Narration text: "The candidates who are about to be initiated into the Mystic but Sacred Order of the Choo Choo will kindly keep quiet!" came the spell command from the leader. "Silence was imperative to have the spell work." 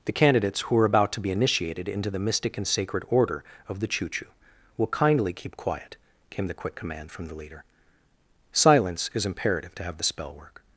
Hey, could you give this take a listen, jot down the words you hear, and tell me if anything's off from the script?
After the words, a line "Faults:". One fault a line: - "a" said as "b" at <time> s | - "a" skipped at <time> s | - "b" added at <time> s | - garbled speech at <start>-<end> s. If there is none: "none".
"The candidates who are about to be initiated into the Mystic and Sacred Order of the Choo Choo will kindly keep quiet!" came the quick command from the leader. "Silence is imperative to have the spell work."
Faults:
- "but" said as "and" at 2.6 s
- "spell" said as "quick" at 6.5 s
- "was" said as "is" at 9.1 s